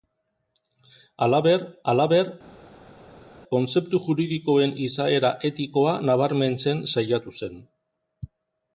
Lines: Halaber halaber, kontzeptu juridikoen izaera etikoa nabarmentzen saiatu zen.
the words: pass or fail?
pass